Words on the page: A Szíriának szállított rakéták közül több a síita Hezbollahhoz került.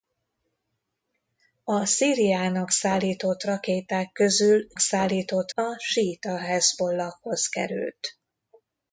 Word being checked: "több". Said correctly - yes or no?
no